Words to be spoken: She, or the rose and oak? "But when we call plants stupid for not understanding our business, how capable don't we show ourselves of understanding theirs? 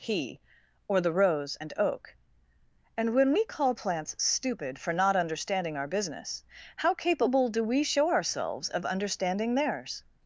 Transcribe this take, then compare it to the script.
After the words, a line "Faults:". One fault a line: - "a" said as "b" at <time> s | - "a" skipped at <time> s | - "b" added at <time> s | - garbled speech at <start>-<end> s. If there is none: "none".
He, or the rose and oak? "And when we call plants stupid for not understanding our business, how capable do we show ourselves of understanding theirs?
Faults:
- "She" said as "He" at 0.0 s
- "But" said as "And" at 3.0 s
- "don't" said as "do" at 7.5 s